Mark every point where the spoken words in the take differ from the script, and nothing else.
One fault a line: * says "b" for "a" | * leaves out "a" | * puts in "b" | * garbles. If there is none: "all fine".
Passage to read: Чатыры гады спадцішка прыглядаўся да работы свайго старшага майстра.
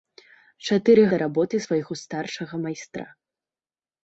* leaves out "гады спадцішка прыглядаўся"